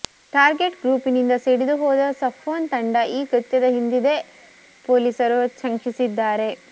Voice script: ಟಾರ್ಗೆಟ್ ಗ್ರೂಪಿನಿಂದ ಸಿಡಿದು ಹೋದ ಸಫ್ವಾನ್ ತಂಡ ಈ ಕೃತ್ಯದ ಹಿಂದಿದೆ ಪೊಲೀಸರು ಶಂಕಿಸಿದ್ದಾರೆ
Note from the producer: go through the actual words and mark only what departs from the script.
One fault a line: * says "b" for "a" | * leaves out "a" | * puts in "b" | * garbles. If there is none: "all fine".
all fine